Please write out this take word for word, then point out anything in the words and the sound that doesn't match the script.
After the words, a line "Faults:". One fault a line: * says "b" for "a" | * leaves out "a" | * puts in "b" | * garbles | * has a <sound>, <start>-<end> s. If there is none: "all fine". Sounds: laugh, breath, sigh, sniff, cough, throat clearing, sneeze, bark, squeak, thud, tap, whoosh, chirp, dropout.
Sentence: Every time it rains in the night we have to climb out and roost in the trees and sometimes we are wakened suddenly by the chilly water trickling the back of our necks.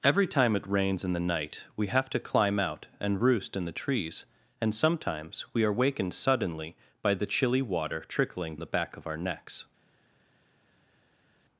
Every time it rains in the night we have to climb out and roost in the trees and sometimes we are wakened suddenly by the chilly water trickling the back of our necks.
Faults:
all fine